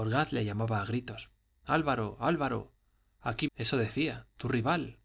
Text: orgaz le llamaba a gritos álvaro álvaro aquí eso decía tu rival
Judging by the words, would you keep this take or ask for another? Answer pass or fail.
pass